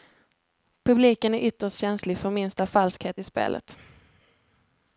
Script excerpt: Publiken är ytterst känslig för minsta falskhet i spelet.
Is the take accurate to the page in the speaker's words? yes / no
yes